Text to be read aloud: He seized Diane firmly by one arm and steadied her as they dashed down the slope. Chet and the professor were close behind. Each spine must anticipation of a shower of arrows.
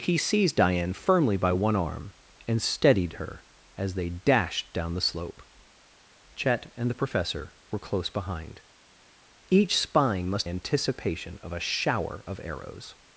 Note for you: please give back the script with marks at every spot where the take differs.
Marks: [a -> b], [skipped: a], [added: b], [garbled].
He seized Diane firmly by one arm and steadied her as they dashed down the slope. Chet and the professor were close behind. Each spine must anticipation of a shower of arrows.